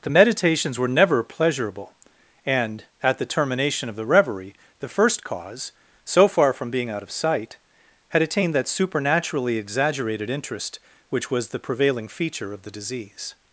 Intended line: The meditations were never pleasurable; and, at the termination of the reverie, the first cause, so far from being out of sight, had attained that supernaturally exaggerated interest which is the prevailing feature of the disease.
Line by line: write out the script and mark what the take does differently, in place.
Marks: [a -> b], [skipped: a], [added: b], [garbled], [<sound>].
The meditations were never pleasurable; and, at the termination of the reverie, the first cause, so far from being out of sight, had attained that supernaturally exaggerated interest which [is -> was] the prevailing feature of the disease.